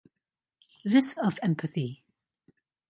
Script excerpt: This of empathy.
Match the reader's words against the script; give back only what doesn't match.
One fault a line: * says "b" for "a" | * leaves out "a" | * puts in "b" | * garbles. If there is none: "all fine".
all fine